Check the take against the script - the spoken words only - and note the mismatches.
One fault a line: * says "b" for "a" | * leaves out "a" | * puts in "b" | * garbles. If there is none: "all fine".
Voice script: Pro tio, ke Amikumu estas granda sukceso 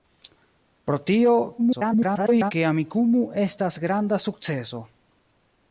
* garbles